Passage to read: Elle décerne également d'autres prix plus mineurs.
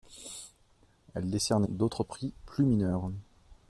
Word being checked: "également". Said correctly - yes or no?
no